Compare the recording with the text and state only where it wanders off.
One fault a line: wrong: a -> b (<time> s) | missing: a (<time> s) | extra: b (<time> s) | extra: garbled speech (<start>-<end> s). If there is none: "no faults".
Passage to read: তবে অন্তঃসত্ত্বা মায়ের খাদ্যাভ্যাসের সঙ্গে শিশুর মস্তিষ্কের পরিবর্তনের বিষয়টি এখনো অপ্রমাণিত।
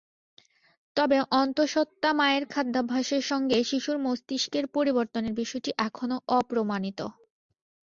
no faults